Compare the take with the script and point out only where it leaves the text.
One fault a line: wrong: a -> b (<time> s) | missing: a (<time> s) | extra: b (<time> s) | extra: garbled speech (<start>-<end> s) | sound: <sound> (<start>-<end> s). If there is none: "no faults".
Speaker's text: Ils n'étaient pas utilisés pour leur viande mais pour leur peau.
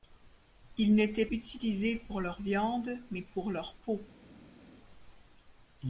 missing: pas (1.3 s)